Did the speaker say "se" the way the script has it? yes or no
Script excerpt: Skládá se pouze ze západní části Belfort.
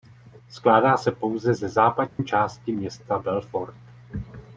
yes